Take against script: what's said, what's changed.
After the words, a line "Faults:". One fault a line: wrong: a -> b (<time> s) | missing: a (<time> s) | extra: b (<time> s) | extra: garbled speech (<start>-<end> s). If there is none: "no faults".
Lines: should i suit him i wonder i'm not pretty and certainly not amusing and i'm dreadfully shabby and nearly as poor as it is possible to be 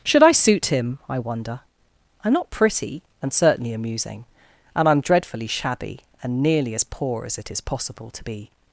should i suit him i wonder i'm not pretty and certainly amusing and i'm dreadfully shabby and nearly as poor as it is possible to be
Faults:
missing: not (3.7 s)